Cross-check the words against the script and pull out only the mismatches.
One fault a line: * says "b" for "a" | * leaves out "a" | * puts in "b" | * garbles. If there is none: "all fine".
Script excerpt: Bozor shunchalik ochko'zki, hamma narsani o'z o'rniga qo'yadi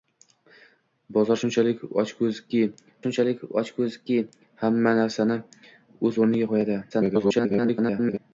* puts in "shunchalik ochko'zki"
* garbles